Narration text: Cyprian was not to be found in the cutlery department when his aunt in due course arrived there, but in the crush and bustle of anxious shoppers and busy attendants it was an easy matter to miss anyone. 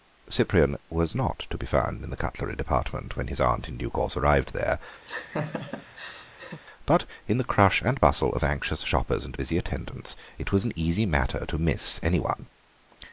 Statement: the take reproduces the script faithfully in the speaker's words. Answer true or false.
true